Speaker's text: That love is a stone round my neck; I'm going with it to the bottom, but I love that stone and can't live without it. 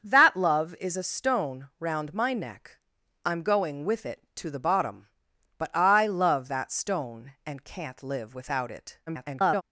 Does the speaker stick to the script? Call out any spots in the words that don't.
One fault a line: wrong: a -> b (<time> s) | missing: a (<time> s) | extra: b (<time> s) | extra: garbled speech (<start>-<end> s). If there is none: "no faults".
extra: garbled speech (9.1-9.6 s)